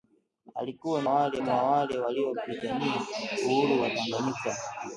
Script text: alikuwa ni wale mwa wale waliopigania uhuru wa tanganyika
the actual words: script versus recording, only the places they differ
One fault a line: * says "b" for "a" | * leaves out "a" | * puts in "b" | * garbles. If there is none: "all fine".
all fine